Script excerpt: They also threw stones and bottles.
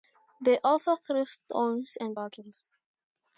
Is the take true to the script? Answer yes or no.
yes